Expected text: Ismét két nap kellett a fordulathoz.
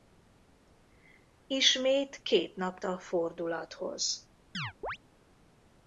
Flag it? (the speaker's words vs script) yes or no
yes